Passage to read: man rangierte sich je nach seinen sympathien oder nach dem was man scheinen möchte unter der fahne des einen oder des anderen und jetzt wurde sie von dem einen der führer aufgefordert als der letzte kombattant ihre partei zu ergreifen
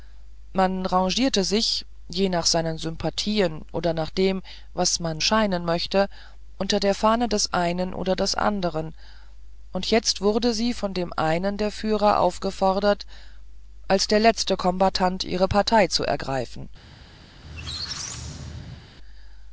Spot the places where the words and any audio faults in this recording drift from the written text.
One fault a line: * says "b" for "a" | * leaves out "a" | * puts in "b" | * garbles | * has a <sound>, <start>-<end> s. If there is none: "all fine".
* has a squeak, 17.3-18.9 s